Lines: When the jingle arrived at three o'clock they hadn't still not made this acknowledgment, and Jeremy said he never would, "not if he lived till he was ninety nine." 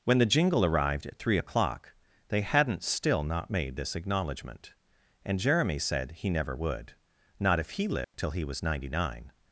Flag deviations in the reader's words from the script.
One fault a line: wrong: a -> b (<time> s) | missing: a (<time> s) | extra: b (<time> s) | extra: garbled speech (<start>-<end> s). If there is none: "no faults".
no faults